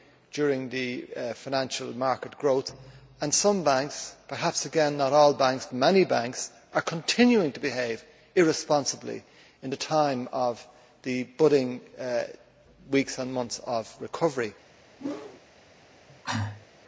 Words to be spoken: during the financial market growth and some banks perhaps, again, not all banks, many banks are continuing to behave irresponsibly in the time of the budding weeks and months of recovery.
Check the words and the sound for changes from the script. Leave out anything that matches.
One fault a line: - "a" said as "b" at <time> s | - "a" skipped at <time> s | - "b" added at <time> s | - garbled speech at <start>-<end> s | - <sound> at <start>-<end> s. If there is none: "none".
- whoosh at 15.0-15.4 s
- cough at 16.1-16.7 s